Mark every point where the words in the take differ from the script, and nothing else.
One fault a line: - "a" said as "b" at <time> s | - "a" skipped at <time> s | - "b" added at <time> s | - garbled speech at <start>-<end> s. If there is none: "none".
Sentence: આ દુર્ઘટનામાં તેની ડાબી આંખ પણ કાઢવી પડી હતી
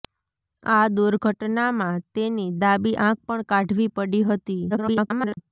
- garbled speech at 4.7-5.4 s